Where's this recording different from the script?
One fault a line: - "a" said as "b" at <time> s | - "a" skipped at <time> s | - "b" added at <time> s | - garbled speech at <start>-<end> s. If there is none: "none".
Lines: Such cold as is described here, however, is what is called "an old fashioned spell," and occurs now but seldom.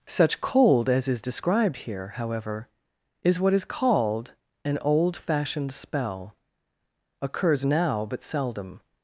- "and" skipped at 6.3 s